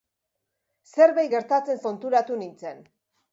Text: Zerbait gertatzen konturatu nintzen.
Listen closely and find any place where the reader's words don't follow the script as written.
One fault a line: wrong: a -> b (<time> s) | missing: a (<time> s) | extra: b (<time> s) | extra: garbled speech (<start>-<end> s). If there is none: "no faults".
no faults